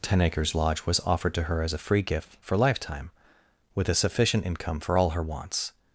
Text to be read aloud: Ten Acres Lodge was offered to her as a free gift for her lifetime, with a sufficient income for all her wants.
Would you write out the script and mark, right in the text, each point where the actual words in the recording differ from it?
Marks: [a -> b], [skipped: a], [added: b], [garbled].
Ten Acres Lodge was offered to her as a free gift for [skipped: her] lifetime, with a sufficient income for all her wants.